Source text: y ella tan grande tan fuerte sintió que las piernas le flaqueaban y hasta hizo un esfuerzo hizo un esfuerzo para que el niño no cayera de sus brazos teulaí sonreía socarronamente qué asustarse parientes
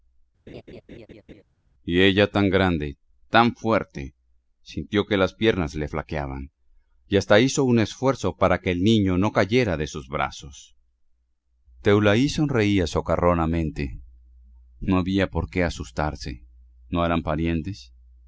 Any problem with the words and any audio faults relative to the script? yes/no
yes